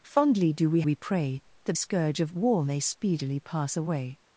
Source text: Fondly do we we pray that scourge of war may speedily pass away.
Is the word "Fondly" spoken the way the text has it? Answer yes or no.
yes